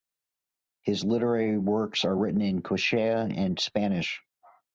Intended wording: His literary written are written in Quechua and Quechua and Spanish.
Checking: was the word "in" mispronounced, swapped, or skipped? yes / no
no